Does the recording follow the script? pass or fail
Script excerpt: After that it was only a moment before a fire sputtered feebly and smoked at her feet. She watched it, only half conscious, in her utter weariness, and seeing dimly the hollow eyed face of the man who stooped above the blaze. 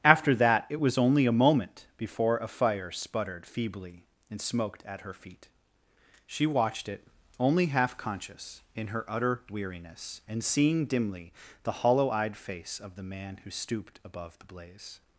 pass